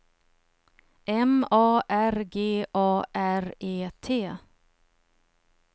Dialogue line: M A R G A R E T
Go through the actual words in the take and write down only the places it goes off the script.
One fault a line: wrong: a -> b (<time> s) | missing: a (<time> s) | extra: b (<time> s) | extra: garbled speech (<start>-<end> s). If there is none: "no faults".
no faults